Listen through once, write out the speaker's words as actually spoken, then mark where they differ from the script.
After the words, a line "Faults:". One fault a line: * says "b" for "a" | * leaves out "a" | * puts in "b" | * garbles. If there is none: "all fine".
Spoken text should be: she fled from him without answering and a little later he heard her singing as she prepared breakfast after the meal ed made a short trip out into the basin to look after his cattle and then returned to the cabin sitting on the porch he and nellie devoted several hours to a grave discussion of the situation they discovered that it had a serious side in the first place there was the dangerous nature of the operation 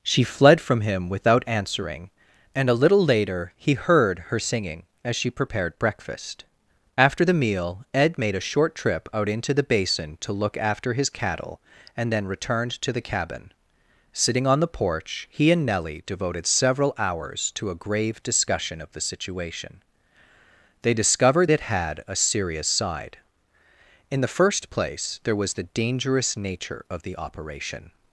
she fled from him without answering and a little later he heard her singing as she prepared breakfast after the meal ed made a short trip out into the basin to look after his cattle and then returned to the cabin sitting on the porch he and nellie devoted several hours to a grave discussion of the situation they discovered it had a serious side in the first place there was the dangerous nature of the operation
Faults:
* leaves out "that"